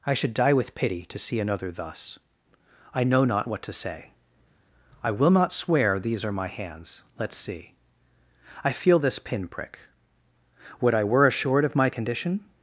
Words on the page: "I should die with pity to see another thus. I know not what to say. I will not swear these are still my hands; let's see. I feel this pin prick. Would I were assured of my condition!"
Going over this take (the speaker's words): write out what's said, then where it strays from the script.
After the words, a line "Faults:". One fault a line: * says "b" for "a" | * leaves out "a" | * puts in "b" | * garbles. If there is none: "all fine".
"I should die with pity to see another thus. I know not what to say. I will not swear these are my hands; let's see. I feel this pin prick. Would I were assured of my condition!"
Faults:
* leaves out "still"